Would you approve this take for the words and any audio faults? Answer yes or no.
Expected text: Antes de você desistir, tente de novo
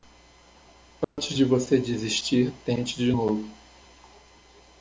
no